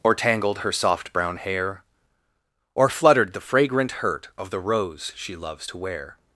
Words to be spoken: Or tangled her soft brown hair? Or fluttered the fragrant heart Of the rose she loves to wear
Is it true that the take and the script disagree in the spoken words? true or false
true